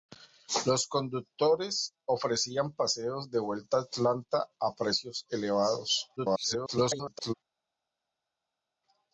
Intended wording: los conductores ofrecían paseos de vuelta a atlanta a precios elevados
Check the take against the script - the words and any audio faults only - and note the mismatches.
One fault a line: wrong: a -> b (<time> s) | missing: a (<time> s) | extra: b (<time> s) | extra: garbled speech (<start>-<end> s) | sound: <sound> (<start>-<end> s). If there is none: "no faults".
extra: garbled speech (6.2-7.3 s)